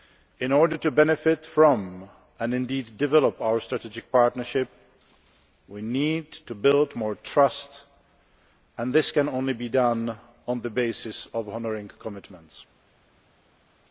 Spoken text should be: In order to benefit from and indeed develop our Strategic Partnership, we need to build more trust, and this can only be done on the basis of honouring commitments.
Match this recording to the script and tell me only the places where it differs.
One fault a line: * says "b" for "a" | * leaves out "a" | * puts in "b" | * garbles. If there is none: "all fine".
all fine